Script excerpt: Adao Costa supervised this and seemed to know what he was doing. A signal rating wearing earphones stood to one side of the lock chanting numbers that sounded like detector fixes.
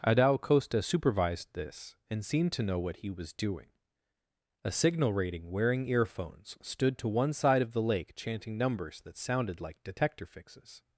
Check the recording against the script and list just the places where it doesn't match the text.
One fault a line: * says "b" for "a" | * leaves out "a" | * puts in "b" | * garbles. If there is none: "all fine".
* says "lake" for "lock"